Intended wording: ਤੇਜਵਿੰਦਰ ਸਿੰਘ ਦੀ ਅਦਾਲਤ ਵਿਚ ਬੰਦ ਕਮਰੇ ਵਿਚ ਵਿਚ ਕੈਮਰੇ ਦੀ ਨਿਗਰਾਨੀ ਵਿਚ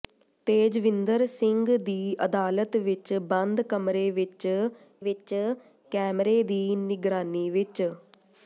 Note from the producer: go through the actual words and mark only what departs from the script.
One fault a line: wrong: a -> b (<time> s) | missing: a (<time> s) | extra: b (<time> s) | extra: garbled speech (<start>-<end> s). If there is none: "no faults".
no faults